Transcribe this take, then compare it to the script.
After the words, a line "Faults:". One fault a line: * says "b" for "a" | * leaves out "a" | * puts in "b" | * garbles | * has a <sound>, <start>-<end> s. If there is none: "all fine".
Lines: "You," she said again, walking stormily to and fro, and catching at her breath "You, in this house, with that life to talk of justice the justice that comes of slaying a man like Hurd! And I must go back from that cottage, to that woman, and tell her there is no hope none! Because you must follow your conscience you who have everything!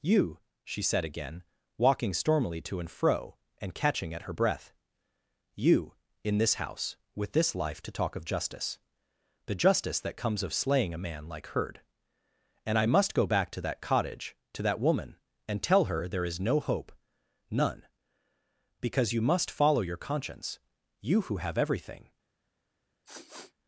"You," she said again, walking stormily to and fro, and catching at her breath "You, in this house, with this life to talk of justice the justice that comes of slaying a man like Hurd! And I must go back to that cottage, to that woman, and tell her there is no hope none! Because you must follow your conscience you who have everything!
Faults:
* says "this" for "that"
* says "to" for "from"
* has a sniff, 23.0-23.5 s